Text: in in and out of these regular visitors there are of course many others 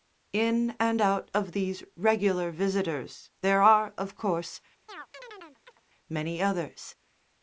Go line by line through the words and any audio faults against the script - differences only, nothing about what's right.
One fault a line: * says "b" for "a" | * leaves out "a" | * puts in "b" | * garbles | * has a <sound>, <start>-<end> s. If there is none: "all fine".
* leaves out "in"
* has a chirp, 4.9-5.8 s